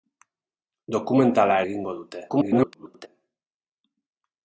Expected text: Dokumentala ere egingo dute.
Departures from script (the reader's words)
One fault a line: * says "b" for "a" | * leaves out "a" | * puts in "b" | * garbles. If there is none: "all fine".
* leaves out "ere"
* garbles